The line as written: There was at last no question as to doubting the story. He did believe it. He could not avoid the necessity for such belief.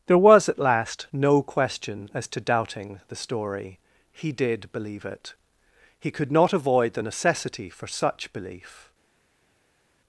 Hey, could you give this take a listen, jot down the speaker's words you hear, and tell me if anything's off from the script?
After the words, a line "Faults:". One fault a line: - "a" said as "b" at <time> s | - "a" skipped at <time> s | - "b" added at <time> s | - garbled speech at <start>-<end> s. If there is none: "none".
There was at last no question as to doubting the story. He did believe it. He could not avoid the necessity for such belief.
Faults:
none